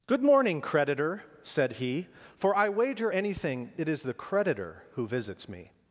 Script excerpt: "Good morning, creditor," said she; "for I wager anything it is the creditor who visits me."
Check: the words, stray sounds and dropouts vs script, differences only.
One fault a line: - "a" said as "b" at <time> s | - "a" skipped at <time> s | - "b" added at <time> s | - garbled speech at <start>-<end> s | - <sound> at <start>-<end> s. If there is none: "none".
- "she" said as "he" at 1.7 s